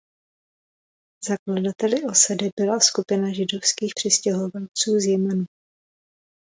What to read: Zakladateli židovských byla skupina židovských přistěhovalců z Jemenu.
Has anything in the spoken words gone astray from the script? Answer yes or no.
yes